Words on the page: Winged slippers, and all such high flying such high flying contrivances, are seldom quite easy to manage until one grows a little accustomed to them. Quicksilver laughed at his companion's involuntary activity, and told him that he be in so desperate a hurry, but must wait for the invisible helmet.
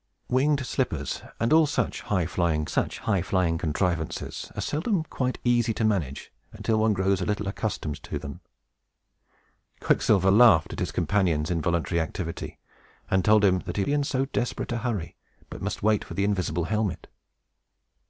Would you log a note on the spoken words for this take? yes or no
no